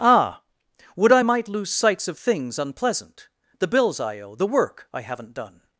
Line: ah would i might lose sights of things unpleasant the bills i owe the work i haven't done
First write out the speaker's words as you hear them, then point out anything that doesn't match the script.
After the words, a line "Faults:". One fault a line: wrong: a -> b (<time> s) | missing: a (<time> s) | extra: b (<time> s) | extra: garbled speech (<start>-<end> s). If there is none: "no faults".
ah would i might lose sights of things unpleasant the bills i owe the work i haven't done
Faults:
no faults